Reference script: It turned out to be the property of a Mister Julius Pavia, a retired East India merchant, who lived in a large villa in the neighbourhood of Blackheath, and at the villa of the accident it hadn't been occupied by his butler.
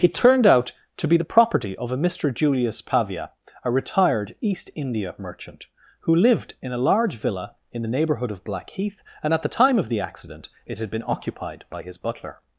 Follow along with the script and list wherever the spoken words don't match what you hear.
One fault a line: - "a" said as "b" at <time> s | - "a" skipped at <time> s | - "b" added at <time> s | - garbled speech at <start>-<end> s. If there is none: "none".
- "villa" said as "time" at 9.5 s
- "hadn't" said as "had" at 10.8 s